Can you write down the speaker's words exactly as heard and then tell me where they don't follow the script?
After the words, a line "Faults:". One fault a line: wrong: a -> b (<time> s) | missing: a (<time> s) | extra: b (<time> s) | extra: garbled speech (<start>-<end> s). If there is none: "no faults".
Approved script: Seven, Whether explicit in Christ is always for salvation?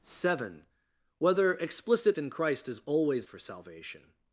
Seven, Whether explicit in Christ is always for salvation?
Faults:
no faults